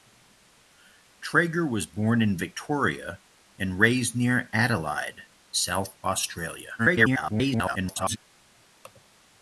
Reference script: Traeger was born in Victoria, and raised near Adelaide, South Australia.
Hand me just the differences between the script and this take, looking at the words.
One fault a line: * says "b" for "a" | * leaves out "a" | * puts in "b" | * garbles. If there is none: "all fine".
* garbles